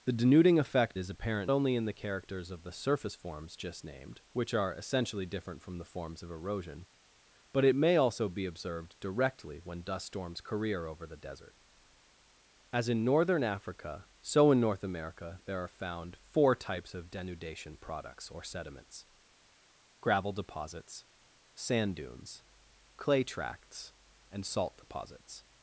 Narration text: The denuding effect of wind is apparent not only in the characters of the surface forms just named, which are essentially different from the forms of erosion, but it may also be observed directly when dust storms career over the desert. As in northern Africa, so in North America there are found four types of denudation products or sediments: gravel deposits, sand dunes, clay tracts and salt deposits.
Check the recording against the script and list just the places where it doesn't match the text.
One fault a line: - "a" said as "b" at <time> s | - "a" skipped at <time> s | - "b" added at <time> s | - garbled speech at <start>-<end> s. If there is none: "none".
- "of wind" skipped at 1.0 s
- "not" skipped at 1.5 s